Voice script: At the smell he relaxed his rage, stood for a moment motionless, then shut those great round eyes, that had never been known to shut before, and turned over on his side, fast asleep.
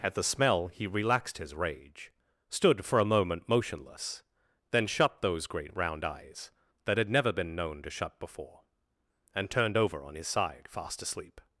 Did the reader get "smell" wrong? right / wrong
right